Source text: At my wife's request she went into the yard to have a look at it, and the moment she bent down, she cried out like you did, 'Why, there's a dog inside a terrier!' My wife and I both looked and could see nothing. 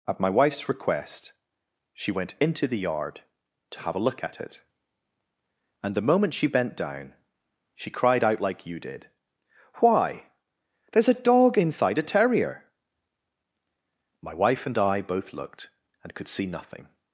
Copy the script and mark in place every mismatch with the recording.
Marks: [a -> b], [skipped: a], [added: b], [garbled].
At my wife's request she went into the yard to have a look at it, and the moment she bent down, she cried out like you did, 'Why, there's a dog inside a terrier!' My wife and I both looked and could see nothing.